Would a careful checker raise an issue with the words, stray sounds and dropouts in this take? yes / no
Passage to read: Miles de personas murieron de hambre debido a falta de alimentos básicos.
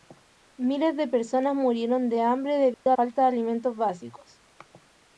yes